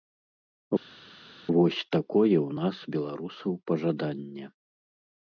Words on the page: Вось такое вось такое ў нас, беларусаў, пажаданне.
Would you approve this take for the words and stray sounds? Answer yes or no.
no